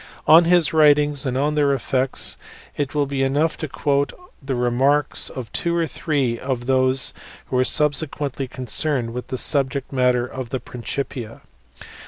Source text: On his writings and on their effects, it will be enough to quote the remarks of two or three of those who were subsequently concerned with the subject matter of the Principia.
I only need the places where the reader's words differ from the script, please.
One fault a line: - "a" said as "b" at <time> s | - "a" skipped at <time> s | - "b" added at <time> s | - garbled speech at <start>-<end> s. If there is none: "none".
none